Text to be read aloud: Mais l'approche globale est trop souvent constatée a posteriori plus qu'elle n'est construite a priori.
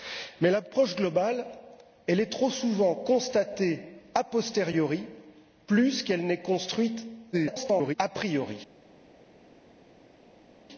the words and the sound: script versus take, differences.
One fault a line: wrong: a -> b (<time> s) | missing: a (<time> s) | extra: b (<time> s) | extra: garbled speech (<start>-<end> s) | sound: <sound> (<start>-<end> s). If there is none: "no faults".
extra: garbled speech (7.3-8.0 s)